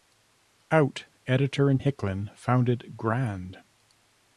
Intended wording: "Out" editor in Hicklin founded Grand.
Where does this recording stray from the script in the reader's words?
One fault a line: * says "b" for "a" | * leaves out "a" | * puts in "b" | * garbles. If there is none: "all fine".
all fine